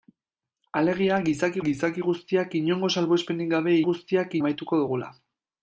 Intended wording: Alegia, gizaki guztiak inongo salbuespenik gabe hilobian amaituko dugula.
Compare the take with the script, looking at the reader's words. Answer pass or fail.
fail